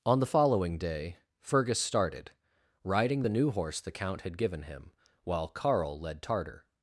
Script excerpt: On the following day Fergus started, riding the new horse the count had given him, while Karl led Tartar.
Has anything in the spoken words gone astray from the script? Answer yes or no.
no